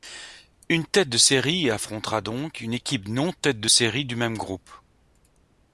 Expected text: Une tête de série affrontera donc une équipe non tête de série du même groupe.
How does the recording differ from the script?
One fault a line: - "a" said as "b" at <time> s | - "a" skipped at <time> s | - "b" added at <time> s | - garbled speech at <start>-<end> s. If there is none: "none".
none